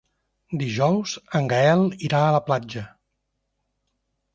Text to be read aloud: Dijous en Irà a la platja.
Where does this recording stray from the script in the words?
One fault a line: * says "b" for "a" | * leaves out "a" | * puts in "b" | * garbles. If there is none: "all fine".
* puts in "Gaël"